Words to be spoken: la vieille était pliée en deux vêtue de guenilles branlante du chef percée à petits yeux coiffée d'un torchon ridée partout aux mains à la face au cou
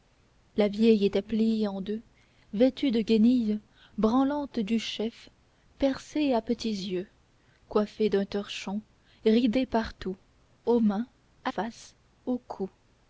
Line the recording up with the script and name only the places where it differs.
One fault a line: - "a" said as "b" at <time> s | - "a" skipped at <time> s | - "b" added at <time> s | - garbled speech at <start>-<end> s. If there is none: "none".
- "la" skipped at 11.5 s